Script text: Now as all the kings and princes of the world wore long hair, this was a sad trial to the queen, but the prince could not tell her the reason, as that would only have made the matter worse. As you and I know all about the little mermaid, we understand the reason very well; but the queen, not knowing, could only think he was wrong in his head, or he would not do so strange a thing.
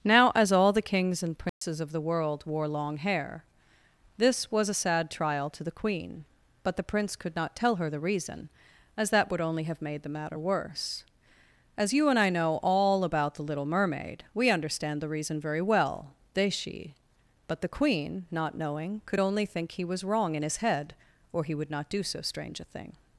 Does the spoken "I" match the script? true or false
true